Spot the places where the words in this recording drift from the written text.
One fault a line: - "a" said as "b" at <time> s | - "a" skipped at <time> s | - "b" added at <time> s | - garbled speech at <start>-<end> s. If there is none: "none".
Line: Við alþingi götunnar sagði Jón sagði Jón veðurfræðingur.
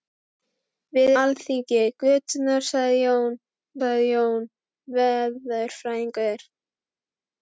none